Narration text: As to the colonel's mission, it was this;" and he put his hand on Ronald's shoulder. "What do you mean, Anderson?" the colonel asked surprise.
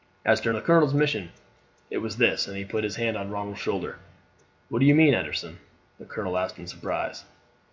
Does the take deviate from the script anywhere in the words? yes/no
yes